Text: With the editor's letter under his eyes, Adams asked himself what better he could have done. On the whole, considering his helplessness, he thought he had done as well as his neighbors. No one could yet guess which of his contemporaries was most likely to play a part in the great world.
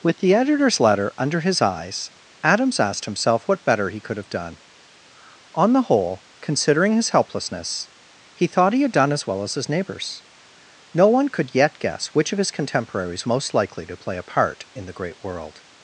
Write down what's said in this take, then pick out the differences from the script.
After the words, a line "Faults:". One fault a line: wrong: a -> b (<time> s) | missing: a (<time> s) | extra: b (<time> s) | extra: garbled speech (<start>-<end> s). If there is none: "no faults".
With the editor's letter under his eyes, Adams asked himself what better he could have done. On the whole, considering his helplessness, he thought he had done as well as his neighbors. No one could yet guess which of his contemporaries most likely to play a part in the great world.
Faults:
missing: was (13.3 s)